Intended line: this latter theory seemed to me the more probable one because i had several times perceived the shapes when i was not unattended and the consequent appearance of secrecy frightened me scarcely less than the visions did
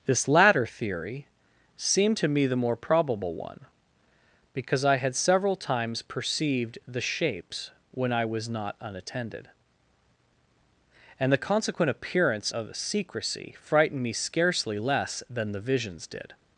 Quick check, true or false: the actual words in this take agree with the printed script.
true